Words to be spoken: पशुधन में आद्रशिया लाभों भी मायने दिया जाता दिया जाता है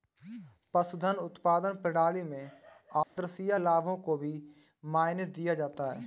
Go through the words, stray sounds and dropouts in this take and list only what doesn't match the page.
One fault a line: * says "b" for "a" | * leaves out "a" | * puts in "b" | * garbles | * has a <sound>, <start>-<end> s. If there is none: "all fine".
* puts in "उत्पादन प्रणाली"
* has a dropout, 3.0-3.2 s
* puts in "को"
* leaves out "दिया जाता"